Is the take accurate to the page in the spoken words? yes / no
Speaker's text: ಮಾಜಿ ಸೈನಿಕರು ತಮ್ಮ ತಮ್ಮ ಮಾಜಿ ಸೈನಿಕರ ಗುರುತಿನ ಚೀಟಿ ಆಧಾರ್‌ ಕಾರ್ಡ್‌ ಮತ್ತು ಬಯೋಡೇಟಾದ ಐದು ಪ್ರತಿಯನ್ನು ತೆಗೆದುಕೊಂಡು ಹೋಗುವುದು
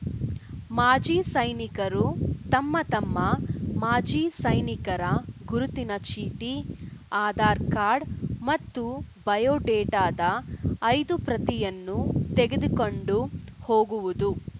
yes